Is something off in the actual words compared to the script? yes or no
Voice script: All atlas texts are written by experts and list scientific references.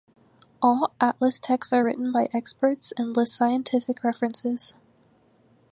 no